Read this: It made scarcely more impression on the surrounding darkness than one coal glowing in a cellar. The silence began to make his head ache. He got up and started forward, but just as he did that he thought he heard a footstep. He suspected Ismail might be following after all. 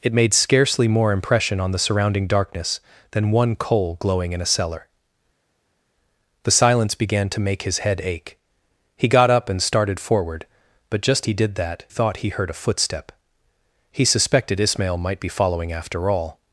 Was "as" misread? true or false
true